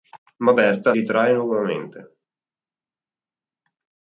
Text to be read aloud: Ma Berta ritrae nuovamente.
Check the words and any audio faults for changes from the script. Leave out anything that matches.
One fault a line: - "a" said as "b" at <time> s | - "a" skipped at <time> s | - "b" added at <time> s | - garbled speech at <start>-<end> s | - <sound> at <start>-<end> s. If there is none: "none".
none